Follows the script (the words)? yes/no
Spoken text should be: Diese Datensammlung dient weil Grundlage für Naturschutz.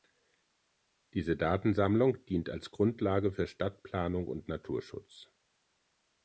no